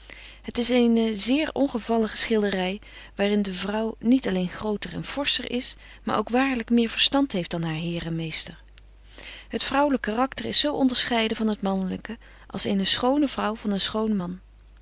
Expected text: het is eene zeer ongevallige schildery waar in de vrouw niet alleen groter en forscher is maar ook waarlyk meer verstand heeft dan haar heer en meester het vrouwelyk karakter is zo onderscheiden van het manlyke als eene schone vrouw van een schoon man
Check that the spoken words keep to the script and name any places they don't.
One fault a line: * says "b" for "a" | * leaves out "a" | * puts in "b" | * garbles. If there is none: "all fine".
all fine